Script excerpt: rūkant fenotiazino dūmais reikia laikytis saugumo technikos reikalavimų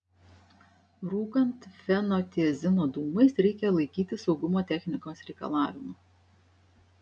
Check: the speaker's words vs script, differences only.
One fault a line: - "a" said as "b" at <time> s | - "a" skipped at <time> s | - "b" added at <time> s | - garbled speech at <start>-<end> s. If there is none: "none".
none